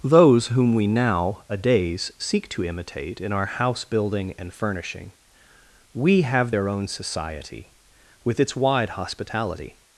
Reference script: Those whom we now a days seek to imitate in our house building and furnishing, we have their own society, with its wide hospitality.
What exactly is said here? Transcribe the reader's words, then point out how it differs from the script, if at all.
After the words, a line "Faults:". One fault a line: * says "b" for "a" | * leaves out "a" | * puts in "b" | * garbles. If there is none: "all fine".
Those whom we now a days seek to imitate in our house building and furnishing, we have their own society, with its wide hospitality.
Faults:
all fine